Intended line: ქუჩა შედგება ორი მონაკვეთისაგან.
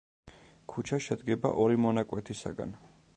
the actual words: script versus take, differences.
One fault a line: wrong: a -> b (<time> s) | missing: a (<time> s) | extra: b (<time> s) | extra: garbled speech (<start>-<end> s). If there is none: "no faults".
no faults